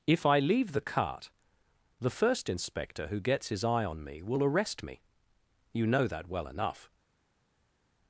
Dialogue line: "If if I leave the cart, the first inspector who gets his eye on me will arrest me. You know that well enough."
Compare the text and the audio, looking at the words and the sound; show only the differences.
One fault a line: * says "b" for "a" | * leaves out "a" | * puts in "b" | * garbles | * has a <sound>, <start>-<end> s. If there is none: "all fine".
* leaves out "if"